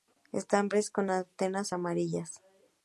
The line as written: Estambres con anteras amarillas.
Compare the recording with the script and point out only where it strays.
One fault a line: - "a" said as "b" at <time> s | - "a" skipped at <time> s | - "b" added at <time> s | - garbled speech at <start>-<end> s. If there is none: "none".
none